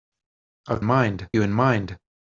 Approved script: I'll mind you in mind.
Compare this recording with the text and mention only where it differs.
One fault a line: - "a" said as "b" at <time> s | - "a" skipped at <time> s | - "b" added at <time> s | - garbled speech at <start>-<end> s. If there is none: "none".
none